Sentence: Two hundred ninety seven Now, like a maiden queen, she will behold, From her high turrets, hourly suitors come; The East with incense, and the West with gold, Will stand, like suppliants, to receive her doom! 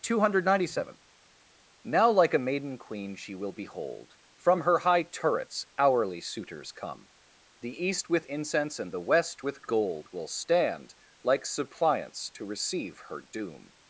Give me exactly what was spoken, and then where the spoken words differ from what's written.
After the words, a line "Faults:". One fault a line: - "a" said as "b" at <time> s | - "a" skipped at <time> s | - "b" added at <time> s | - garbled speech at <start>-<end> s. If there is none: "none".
Two hundred ninety seven Now, like a maiden queen, she will behold, From her high turrets, hourly suitors come; The East with incense, and the West with gold, Will stand, like suppliants, to receive her doom!
Faults:
none